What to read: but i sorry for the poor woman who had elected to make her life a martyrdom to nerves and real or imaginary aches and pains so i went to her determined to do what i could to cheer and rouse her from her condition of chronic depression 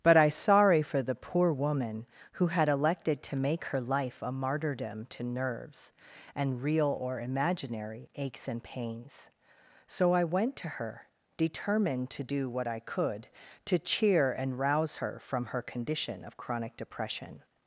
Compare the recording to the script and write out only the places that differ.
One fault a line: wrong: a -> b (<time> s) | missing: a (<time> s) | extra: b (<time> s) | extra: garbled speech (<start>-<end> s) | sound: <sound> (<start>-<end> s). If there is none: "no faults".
no faults